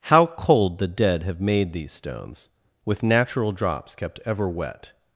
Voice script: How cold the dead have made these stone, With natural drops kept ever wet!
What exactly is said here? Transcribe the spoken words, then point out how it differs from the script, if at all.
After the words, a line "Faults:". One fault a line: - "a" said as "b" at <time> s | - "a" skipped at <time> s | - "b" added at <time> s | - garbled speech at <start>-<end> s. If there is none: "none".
How cold the dead have made these stones, With natural drops kept ever wet!
Faults:
- "stone" said as "stones" at 1.9 s